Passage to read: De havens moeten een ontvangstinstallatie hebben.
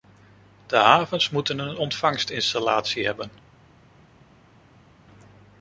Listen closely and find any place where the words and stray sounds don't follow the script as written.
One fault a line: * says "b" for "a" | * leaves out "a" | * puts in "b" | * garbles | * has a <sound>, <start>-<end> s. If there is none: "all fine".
all fine